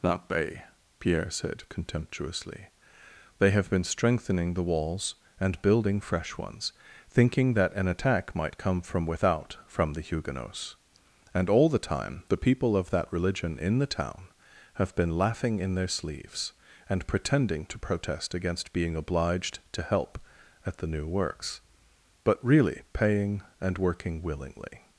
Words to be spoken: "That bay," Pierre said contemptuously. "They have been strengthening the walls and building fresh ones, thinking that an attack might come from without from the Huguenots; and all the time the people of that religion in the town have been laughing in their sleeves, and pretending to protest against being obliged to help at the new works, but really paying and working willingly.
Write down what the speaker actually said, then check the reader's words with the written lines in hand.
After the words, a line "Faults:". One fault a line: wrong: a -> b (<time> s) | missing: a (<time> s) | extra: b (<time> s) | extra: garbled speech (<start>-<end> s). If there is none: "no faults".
"That bay," Pierre said contemptuously. "They have been strengthening the walls and building fresh ones, thinking that an attack might come from without from the Huguenots; and all the time the people of that religion in the town have been laughing in their sleeves, and pretending to protest against being obliged to help at the new works, but really paying and working willingly.
Faults:
no faults